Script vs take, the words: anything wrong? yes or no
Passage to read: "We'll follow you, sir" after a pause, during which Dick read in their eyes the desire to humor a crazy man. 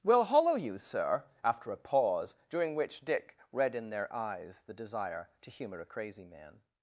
yes